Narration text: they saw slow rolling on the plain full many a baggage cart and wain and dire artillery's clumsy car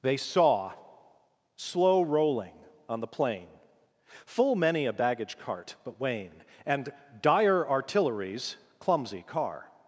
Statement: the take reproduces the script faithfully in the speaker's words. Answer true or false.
false